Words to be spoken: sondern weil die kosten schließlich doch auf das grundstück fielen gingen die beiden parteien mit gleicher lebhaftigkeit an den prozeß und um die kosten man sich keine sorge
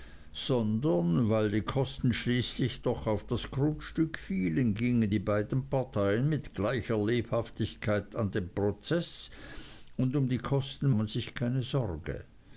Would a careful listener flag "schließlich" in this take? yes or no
no